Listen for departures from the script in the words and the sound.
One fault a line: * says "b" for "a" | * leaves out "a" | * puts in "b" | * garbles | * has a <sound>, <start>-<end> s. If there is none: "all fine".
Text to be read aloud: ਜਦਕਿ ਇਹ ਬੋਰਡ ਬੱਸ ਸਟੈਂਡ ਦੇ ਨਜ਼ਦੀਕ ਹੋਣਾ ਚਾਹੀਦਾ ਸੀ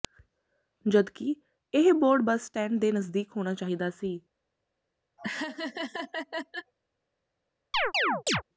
* has a laugh, 5.2-6.7 s
* has a chirp, 7.7-8.4 s